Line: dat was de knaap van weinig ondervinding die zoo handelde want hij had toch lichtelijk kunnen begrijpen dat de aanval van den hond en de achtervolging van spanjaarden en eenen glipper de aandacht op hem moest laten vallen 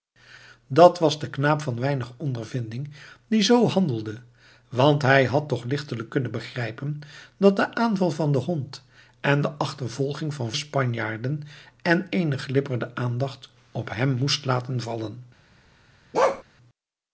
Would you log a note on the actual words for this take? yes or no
no